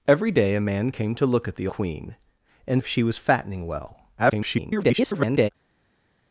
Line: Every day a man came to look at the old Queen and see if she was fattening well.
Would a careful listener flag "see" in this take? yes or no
yes